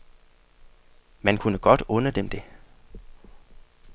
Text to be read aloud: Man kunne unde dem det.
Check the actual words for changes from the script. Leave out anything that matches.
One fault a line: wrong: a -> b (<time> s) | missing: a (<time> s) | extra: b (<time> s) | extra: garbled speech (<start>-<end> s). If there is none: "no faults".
extra: godt (1.6 s)